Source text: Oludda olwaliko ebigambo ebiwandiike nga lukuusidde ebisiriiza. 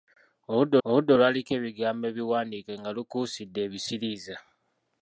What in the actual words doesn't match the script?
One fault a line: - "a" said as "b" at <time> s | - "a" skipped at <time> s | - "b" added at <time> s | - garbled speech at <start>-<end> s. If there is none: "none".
- "oludda" added at 0.9 s